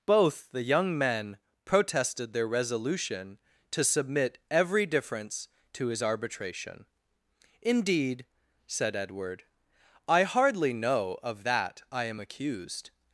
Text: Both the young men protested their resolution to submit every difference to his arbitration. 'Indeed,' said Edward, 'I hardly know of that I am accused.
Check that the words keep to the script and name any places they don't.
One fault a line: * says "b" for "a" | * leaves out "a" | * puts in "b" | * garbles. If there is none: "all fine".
all fine